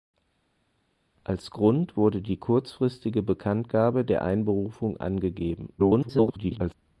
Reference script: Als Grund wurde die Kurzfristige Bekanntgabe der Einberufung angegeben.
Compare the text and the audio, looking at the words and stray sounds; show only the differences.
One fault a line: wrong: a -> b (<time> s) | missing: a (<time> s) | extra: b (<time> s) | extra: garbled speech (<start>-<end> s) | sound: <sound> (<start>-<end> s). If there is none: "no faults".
extra: garbled speech (5.8-6.7 s)